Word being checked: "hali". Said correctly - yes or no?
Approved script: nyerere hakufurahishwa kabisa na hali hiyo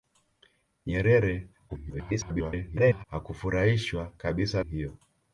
no